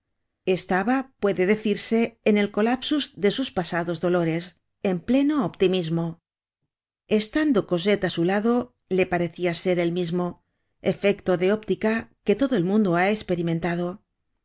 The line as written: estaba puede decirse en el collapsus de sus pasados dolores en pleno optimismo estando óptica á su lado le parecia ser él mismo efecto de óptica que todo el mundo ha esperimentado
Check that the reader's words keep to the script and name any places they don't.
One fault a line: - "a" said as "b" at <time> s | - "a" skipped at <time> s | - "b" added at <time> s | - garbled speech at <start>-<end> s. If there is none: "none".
- "óptica" said as "cosette" at 7.7 s